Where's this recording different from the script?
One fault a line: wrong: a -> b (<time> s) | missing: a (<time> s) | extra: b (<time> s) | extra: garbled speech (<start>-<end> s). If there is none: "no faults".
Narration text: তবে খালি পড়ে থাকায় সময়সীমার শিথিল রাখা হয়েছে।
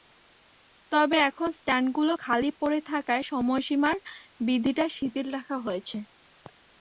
extra: এখন স্ট্যান্ডগুলো (1.3 s)
extra: বিধিটা (4.5 s)